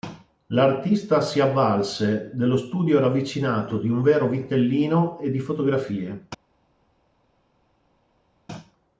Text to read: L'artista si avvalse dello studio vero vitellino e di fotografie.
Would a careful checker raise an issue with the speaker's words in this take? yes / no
yes